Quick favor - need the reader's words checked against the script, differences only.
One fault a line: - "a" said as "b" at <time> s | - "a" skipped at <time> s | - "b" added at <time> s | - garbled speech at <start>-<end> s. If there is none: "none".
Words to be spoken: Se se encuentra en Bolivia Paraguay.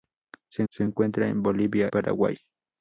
none